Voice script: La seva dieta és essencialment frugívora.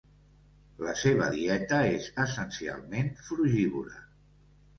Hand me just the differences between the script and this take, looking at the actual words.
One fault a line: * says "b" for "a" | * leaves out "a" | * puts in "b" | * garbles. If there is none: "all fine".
all fine